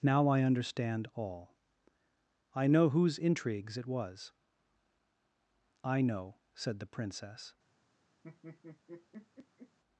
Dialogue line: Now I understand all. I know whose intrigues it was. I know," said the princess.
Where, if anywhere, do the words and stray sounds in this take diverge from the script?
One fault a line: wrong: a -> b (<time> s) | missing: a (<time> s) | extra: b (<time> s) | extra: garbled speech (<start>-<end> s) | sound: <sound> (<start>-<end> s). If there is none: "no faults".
sound: laugh (8.2-9.8 s)